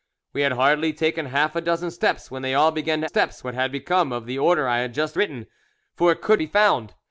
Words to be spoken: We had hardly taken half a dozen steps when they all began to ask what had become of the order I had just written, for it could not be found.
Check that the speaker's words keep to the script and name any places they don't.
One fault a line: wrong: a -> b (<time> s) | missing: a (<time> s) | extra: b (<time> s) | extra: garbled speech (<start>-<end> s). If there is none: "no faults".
wrong: ask -> steps (3.0 s)
missing: not (6.4 s)